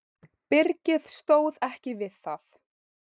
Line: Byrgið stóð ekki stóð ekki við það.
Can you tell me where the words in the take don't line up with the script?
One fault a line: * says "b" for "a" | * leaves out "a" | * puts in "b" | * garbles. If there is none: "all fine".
* leaves out "stóð ekki"